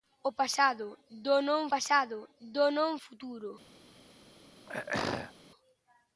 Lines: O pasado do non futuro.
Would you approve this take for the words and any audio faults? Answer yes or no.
no